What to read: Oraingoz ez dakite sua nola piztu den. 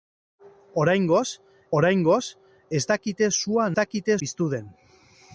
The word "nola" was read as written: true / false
false